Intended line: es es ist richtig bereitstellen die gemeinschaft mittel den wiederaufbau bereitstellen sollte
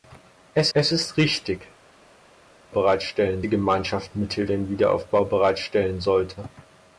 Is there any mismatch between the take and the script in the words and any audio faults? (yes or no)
no